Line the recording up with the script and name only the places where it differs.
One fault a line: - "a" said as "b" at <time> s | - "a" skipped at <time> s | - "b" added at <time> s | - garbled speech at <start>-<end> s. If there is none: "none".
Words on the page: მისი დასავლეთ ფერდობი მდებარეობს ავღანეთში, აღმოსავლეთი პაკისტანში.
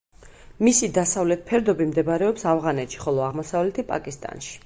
- "ხოლო" added at 3.0 s